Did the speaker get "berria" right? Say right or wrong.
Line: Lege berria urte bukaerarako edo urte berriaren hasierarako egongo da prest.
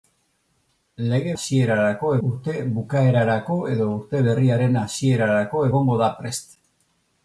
wrong